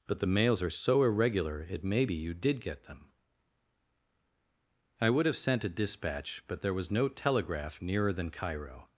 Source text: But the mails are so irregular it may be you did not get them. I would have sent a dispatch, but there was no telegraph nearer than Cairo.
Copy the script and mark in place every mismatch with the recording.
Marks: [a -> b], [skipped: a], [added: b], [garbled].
But the mails are so irregular it may be you did [skipped: not] get them. I would have sent a dispatch, but there was no telegraph nearer than Cairo.